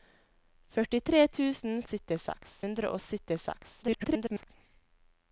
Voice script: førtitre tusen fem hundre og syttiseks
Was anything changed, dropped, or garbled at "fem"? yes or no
yes